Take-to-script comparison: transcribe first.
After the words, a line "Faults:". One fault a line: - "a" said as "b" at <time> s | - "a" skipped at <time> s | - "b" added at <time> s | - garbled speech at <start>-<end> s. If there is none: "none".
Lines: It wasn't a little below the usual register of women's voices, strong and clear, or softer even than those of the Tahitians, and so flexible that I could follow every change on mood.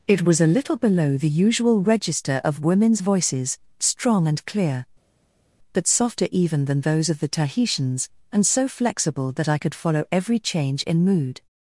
It was a little below the usual register of women's voices, strong and clear, but softer even than those of the Tahitians, and so flexible that I could follow every change in mood.
Faults:
- "wasn't" said as "was" at 0.2 s
- "or" said as "but" at 5.7 s
- "on" said as "in" at 10.8 s